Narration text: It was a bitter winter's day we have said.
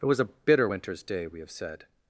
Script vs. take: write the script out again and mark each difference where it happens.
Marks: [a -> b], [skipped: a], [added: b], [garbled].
It was a bitter winter's day we have said.